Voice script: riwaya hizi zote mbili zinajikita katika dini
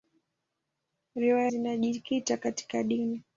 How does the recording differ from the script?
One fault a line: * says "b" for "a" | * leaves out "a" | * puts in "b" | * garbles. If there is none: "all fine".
* leaves out "hizi zote mbili"